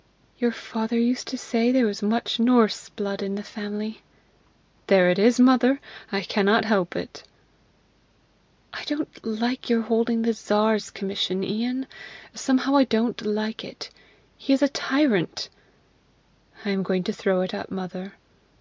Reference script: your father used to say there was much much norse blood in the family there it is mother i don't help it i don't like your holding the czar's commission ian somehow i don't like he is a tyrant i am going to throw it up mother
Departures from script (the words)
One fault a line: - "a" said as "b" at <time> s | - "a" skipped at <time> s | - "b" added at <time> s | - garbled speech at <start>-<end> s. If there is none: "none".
- "much" skipped at 2.4 s
- "don't" said as "cannot" at 6.2 s
- "it" added at 13.6 s